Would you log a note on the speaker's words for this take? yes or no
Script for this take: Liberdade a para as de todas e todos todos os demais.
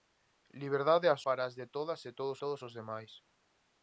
no